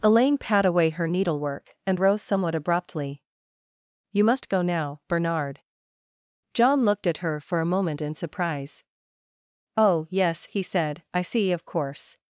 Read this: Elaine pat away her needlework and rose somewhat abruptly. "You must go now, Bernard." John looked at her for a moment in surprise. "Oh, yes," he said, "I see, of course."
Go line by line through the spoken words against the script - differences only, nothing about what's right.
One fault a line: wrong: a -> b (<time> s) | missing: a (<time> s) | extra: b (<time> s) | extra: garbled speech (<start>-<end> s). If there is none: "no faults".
no faults